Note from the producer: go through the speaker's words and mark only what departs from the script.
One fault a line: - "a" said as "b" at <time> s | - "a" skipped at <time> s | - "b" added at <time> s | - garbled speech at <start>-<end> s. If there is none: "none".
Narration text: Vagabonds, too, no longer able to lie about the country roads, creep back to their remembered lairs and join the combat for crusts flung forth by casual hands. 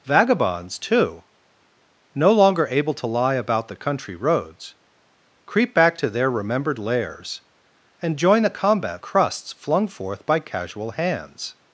- "for" skipped at 9.0 s